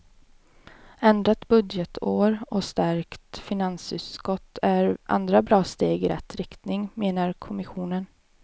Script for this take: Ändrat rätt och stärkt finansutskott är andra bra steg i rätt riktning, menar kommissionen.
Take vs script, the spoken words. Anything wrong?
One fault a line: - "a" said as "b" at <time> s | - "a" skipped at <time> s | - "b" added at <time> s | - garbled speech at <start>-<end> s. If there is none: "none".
- "rätt" said as "budgetår" at 1.5 s